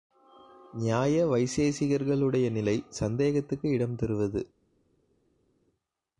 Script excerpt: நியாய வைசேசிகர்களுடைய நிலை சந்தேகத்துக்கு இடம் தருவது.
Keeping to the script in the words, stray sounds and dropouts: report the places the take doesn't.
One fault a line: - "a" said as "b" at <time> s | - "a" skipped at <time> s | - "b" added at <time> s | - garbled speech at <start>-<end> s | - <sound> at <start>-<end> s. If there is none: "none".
none